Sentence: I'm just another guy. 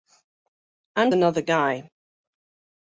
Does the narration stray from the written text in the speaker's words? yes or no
yes